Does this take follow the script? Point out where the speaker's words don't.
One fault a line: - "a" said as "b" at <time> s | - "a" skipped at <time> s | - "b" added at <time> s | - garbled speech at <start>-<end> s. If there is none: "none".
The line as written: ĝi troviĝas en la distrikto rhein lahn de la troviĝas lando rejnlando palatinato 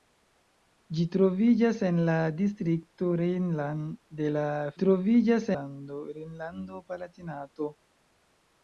none